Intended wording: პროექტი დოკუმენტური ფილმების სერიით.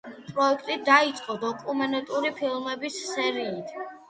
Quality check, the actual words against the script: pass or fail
fail